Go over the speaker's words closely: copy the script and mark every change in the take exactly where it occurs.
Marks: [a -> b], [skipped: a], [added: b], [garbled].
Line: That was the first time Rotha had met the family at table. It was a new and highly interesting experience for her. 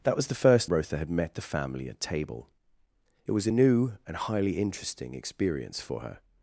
That was the first [skipped: time] Rotha had met the family at table. It was a new and highly interesting experience for her.